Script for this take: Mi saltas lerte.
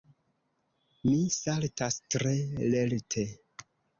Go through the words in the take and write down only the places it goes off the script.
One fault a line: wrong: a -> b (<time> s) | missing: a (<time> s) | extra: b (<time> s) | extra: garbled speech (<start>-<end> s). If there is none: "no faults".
extra: tre (2.1 s)